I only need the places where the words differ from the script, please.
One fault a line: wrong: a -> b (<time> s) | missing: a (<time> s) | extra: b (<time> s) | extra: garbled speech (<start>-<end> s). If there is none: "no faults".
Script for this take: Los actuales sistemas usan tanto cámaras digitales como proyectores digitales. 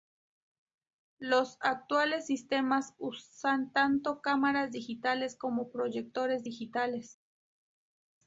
no faults